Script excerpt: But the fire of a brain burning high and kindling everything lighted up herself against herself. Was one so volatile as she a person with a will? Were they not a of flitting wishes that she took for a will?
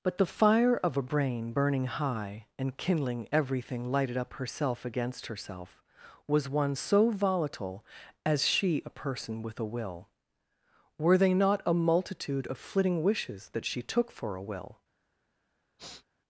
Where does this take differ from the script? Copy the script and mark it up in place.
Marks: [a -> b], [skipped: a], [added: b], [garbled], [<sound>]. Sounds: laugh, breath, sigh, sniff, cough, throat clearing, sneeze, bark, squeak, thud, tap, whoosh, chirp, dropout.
But the fire of a brain burning high and kindling everything lighted up herself against herself. Was one so volatile as she a person with a will? Were they not a [added: multitude] of flitting wishes that she took for a will? [sniff]